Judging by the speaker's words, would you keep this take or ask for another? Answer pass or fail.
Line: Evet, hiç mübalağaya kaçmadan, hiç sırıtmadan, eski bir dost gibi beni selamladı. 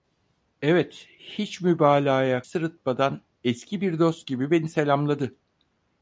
fail